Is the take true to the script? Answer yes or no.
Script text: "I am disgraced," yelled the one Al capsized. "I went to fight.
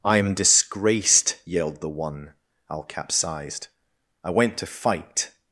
yes